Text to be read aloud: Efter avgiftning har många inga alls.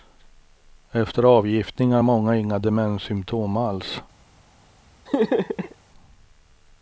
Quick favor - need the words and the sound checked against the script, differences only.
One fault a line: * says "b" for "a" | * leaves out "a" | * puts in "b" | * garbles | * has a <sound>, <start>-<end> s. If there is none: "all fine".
* puts in "demenssymptom"
* has a laugh, 5.1-5.8 s